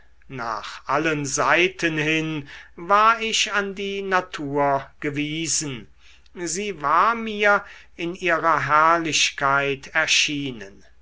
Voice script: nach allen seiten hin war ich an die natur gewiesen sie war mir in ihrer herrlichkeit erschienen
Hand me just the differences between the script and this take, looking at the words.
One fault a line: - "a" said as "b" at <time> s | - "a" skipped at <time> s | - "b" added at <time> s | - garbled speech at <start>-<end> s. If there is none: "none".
none